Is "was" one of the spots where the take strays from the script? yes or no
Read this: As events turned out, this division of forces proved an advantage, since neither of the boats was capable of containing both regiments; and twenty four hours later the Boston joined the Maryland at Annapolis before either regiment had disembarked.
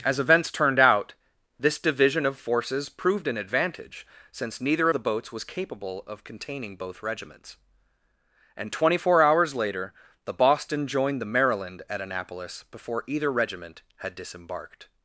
no